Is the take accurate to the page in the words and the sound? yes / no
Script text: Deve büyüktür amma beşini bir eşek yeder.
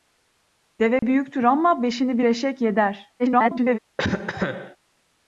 no